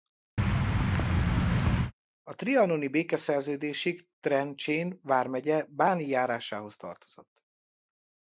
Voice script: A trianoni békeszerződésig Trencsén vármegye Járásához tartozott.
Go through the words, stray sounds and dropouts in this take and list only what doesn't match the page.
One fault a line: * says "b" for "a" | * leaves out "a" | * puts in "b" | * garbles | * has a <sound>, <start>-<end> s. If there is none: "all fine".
* has a thud, 0.4-1.9 s
* puts in "Báni"